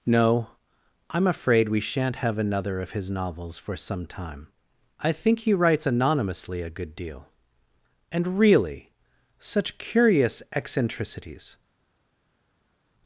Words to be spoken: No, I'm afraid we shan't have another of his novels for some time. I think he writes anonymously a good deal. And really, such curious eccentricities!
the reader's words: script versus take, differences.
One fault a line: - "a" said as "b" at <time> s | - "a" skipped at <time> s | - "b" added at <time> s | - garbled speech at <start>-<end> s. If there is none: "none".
none